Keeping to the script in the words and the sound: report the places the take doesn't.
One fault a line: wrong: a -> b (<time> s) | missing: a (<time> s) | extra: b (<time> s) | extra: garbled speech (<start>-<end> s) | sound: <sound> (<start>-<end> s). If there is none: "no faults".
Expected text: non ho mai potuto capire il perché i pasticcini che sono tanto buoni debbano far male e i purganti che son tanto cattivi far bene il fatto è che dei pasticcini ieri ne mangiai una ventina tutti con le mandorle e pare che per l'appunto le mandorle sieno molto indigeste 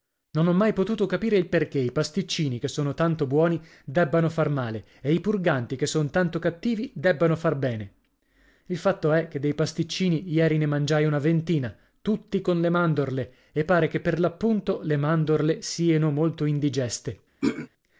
extra: debbano (7.0 s)
sound: throat clearing (17.4-17.7 s)